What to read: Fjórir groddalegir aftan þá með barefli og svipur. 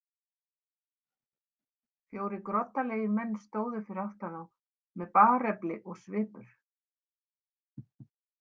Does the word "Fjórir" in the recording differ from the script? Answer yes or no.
no